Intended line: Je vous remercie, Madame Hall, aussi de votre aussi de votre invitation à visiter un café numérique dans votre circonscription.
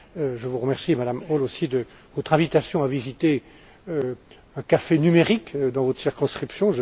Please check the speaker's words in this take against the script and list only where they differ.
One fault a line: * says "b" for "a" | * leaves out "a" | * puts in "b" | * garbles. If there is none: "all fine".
* leaves out "aussi de votre"